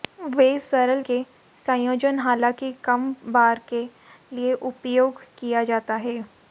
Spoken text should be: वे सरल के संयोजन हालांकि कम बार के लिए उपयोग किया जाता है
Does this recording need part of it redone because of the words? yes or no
no